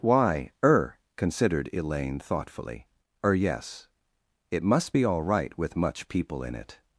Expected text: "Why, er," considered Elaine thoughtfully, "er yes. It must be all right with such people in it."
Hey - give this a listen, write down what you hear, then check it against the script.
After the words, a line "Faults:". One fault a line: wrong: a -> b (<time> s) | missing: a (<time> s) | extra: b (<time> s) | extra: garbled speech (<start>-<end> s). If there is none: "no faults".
"Why, er," considered Elaine thoughtfully, "er yes. It must be all right with much people in it."
Faults:
wrong: such -> much (5.8 s)